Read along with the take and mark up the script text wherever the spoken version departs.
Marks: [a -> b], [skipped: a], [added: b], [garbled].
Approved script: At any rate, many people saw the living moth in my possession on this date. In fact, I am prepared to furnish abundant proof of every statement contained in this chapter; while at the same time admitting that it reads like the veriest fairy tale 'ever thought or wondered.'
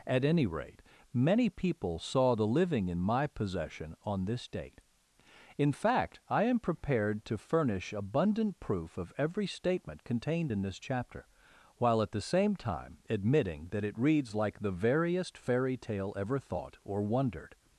At any rate, many people saw the living [skipped: moth] in my possession on this date. In fact, I am prepared to furnish abundant proof of every statement contained in this chapter; while at the same time admitting that it reads like the veriest fairy tale 'ever thought or wondered.'